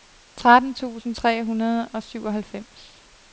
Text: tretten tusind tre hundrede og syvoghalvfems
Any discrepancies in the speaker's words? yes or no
no